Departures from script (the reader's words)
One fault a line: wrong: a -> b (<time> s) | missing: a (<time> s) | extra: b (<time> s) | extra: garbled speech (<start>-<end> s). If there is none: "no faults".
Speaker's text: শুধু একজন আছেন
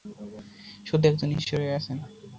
extra: ঈশ্বরই (1.3 s)